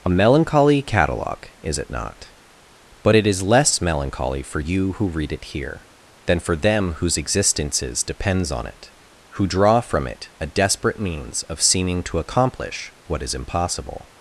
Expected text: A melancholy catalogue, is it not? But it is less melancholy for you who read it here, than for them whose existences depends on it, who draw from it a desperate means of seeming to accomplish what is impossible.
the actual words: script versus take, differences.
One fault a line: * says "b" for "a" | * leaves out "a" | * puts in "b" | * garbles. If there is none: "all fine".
all fine